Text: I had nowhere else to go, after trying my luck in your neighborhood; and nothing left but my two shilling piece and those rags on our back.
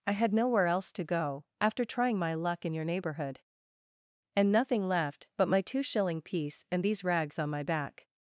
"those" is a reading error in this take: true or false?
true